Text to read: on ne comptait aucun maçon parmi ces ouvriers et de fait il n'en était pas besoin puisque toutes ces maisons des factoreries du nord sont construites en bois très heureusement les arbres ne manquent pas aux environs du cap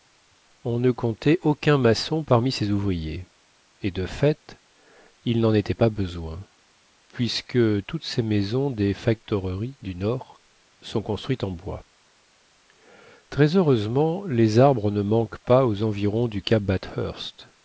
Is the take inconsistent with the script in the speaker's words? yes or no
no